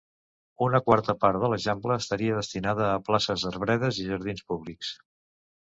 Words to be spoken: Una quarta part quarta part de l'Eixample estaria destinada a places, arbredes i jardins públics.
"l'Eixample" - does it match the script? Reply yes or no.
yes